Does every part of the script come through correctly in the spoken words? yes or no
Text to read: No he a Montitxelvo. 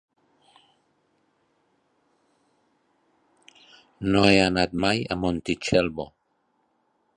no